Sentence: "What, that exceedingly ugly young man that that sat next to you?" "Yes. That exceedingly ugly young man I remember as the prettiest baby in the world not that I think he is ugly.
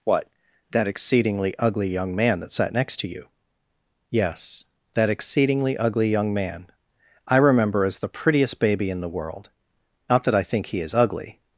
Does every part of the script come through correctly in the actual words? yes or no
no